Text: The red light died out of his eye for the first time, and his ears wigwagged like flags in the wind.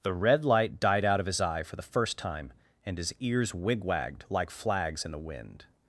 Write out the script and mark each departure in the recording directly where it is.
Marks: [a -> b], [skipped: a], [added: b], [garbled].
The red light died out of his eye for the first time, and his ears wigwagged like flags in the wind.